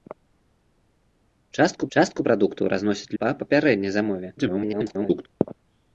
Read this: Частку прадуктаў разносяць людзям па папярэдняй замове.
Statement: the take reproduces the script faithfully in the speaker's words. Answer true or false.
false